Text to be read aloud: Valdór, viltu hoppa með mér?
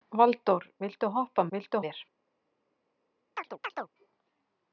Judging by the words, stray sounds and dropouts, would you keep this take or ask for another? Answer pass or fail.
fail